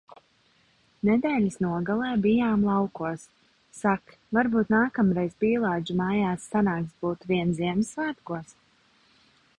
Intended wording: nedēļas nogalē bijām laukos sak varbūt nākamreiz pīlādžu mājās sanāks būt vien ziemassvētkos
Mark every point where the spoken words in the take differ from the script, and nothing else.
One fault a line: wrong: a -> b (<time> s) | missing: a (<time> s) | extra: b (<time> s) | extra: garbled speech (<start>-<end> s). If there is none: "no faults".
no faults